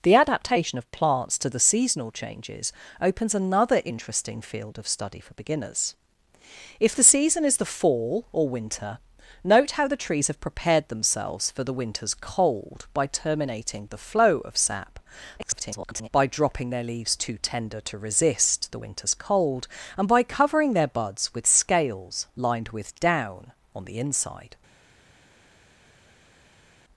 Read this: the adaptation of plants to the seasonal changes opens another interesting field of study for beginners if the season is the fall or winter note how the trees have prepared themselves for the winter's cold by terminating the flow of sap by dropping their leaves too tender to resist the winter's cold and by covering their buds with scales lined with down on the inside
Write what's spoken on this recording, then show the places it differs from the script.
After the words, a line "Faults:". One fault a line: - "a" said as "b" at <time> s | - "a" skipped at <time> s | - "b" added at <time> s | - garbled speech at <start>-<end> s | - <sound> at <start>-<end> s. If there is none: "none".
the adaptation of plants to the seasonal changes opens another interesting field of study for beginners if the season is the fall or winter note how the trees have prepared themselves for the winter's cold by terminating the flow of sap [garbled] by dropping their leaves too tender to resist the winter's cold and by covering their buds with scales lined with down on the inside
Faults:
- garbled speech at 15.4-16.1 s